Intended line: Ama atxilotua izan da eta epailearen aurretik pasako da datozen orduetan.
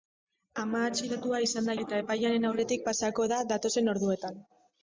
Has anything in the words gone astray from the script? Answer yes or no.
no